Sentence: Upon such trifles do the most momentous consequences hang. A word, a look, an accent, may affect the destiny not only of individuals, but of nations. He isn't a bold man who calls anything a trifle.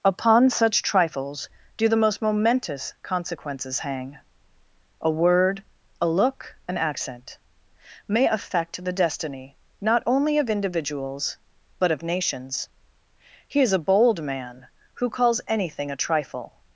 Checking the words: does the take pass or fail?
fail